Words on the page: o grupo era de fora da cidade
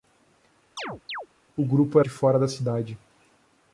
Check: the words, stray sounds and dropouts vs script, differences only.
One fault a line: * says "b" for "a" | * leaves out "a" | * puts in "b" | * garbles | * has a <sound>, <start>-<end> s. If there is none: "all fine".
* has a chirp, 0.8-1.3 s
* leaves out "era"